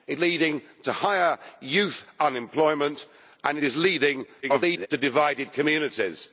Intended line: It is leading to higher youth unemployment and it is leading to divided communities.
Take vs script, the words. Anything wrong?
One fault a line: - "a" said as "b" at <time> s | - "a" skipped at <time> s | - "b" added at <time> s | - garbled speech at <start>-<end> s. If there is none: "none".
- "is" skipped at 0.2 s
- "it" skipped at 3.6 s
- garbled speech at 4.4-4.9 s